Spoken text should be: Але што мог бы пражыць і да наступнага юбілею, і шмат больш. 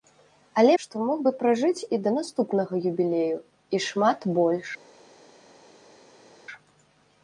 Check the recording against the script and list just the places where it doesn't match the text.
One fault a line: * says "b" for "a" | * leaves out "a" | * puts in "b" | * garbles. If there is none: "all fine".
all fine